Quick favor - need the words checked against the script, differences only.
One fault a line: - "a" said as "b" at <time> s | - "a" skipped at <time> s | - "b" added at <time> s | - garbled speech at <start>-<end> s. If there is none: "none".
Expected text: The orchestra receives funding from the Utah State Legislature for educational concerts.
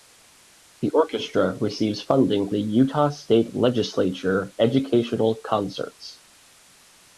- "from" skipped at 2.5 s
- "for" skipped at 4.6 s